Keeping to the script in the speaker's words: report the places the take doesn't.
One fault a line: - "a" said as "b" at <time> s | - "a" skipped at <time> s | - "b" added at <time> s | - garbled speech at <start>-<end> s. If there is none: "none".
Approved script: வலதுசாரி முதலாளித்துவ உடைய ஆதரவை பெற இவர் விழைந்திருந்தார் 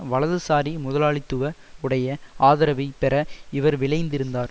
none